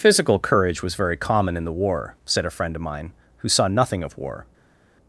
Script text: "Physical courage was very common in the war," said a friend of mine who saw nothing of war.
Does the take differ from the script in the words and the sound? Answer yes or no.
no